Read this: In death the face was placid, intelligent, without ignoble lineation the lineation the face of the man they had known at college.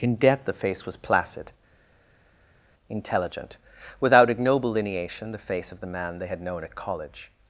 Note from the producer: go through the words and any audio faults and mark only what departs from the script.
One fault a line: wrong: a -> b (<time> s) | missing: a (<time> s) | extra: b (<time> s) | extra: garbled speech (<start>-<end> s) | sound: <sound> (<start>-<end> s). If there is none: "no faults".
missing: lineation the (5.5 s)